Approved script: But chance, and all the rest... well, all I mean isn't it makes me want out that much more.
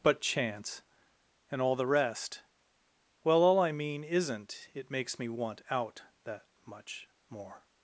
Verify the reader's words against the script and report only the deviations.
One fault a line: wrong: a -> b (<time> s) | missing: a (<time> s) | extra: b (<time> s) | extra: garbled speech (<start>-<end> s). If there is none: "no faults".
no faults